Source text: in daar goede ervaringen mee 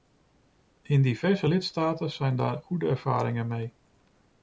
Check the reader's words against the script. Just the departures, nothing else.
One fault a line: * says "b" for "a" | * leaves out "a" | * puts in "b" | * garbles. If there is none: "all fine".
* puts in "diverse lidstaten zijn"